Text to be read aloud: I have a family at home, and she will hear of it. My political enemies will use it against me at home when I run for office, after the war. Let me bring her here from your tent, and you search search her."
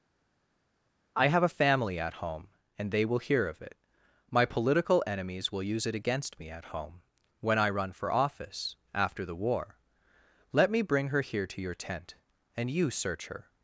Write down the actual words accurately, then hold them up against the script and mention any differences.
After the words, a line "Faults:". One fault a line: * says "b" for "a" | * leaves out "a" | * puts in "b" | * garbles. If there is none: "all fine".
I have a family at home, and they will hear of it. My political enemies will use it against me at home when I run for office, after the war. Let me bring her here to your tent, and you search her."
Faults:
* says "they" for "she"
* says "to" for "from"
* leaves out "search"